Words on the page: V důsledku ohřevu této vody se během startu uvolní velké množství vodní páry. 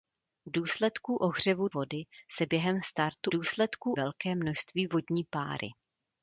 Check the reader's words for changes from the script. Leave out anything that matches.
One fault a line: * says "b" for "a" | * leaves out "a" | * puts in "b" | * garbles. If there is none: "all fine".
* leaves out "této"
* says "důsledku" for "uvolní"